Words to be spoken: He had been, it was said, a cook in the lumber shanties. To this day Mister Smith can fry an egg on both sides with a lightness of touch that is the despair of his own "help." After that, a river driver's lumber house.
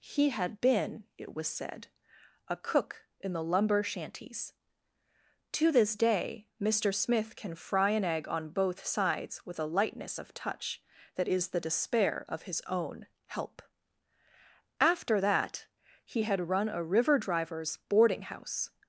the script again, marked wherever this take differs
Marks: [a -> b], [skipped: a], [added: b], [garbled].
He had been, it was said, a cook in the lumber shanties. To this day Mister Smith can fry an egg on both sides with a lightness of touch that is the despair of his own "help." After that, [added: he had run] a river driver's [lumber -> boarding] house.